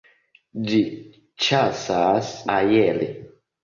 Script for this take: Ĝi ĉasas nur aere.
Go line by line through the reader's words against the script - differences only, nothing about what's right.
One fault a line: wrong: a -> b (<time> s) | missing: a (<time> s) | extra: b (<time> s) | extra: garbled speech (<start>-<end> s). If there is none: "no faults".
missing: nur (2.3 s)